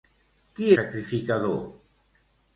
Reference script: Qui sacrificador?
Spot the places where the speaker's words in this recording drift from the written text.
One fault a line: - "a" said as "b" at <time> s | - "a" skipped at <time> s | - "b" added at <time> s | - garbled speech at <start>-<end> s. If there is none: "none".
none